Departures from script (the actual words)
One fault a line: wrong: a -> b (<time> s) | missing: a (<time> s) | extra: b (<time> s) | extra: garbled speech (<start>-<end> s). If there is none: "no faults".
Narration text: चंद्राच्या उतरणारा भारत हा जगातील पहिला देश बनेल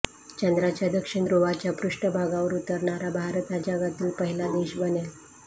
extra: दक्षिण ध्रुवाच्या पृष्ठभागावर (0.9 s)